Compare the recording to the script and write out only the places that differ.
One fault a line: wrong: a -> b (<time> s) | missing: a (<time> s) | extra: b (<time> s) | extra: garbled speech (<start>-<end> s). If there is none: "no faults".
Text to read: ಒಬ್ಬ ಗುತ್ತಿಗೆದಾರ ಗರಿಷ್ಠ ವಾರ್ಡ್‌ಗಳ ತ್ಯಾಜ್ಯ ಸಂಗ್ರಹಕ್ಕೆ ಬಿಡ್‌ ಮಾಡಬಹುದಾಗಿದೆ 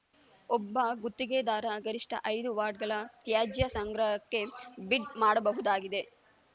extra: ಐದು (2.3 s)